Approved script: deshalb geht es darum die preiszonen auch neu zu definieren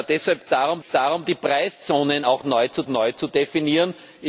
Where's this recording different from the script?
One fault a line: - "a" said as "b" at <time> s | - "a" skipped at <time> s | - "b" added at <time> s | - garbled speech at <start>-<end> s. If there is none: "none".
- "geht" said as "darum" at 0.5 s
- "neu zu" added at 2.9 s